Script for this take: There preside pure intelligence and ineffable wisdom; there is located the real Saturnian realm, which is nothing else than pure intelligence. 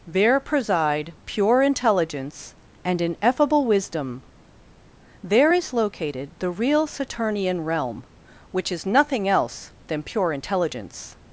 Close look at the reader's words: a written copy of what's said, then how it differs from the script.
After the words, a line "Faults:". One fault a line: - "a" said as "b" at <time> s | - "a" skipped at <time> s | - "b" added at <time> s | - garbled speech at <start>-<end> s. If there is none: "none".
There preside pure intelligence and ineffable wisdom; there is located the real Saturnian realm, which is nothing else than pure intelligence.
Faults:
none